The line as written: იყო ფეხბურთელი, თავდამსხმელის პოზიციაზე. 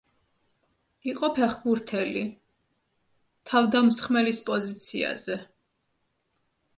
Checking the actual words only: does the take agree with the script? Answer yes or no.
yes